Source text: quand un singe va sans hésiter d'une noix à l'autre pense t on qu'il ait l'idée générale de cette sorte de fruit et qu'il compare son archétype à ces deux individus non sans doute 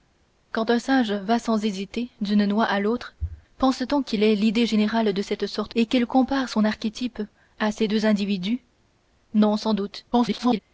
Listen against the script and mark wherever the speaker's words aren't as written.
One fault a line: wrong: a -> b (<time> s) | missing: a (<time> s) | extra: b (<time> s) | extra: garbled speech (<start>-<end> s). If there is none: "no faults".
missing: de fruit (5.7 s)
extra: garbled speech (10.1-10.6 s)